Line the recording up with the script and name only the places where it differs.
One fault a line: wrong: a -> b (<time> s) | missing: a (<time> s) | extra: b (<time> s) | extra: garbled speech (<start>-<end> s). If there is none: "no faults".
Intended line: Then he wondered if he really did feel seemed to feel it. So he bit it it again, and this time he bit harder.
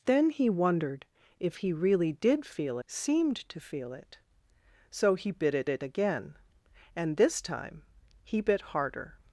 no faults